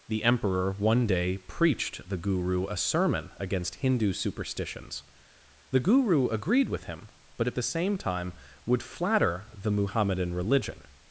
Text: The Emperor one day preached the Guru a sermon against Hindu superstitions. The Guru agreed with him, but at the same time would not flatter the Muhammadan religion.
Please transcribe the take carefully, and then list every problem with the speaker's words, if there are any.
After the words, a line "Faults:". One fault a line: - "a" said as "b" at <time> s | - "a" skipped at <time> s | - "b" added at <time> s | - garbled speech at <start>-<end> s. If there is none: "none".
The Emperor one day preached the Guru a sermon against Hindu superstitions. The Guru agreed with him, but at the same time would flatter the Muhammadan religion.
Faults:
- "not" skipped at 8.8 s